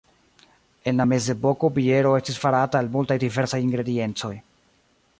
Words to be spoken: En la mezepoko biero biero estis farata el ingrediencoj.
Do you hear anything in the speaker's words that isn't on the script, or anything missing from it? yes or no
yes